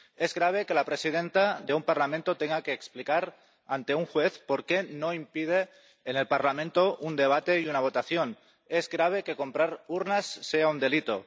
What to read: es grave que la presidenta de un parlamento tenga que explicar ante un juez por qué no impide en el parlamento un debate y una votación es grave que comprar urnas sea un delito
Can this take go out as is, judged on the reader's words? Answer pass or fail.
pass